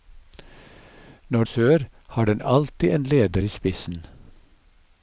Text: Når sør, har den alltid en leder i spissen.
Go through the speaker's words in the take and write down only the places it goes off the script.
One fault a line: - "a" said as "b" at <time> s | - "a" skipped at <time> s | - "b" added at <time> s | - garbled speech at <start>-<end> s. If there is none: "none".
none